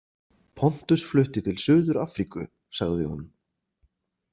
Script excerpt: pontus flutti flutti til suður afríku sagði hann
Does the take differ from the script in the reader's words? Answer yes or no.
yes